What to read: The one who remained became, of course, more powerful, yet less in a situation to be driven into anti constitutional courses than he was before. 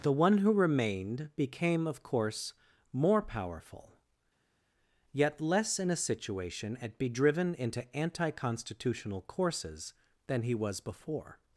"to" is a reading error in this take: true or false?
true